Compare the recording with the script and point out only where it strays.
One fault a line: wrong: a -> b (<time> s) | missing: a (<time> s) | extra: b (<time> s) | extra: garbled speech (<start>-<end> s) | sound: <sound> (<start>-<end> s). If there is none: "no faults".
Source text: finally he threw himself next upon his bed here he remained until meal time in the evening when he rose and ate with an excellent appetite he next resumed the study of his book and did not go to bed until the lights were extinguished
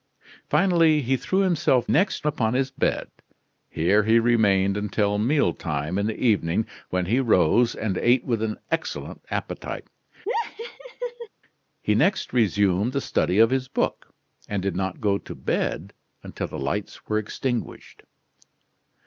sound: laugh (10.3-11.3 s)